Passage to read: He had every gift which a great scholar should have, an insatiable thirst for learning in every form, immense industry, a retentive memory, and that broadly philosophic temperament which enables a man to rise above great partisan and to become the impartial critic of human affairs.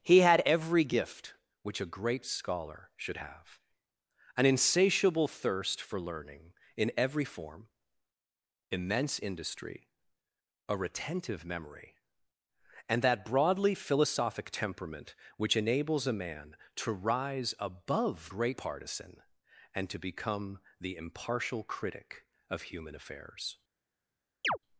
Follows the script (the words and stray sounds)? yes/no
no